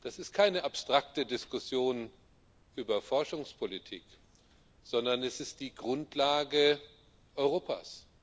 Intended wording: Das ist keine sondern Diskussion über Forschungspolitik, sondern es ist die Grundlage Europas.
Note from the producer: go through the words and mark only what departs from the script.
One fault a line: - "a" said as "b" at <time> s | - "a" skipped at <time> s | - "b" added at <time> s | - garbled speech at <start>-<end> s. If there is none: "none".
- "sondern" said as "abstrakte" at 0.6 s